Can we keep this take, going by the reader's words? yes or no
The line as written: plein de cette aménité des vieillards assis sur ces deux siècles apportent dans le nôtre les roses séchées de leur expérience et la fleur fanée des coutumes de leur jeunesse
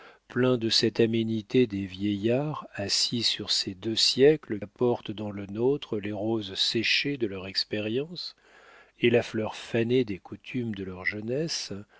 yes